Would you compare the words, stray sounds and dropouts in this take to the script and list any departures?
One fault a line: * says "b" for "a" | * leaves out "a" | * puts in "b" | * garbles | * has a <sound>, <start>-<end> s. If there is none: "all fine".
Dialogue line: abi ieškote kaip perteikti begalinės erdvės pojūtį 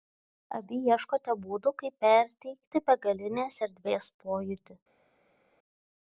* puts in "būdų"